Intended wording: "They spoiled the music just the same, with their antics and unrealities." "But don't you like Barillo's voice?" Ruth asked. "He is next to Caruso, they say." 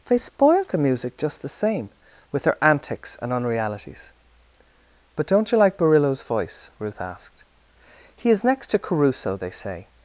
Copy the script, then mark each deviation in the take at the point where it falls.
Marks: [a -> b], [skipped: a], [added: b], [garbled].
"They spoiled the music just the same, with their antics and unrealities." "But don't you like Barillo's voice?" Ruth asked. "He is next to Caruso, they say."